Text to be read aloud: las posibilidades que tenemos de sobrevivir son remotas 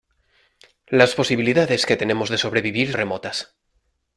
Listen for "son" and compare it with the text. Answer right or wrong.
wrong